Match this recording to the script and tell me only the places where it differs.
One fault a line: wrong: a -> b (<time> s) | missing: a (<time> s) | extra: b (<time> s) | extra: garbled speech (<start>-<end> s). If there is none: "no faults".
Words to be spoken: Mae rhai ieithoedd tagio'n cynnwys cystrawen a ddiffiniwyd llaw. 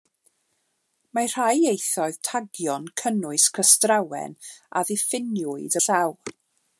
no faults